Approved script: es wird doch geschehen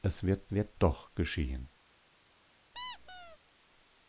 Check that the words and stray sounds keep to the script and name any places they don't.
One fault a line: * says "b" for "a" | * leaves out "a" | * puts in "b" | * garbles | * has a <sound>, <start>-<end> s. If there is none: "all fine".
* puts in "wird"
* has a squeak, 2.7-3.4 s